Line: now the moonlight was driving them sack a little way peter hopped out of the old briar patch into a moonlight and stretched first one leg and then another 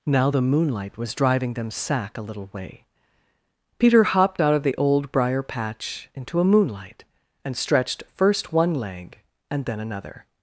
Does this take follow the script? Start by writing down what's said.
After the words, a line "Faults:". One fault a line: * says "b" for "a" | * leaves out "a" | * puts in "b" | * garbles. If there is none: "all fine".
now the moonlight was driving them sack a little way peter hopped out of the old briar patch into a moonlight and stretched first one leg and then another
Faults:
all fine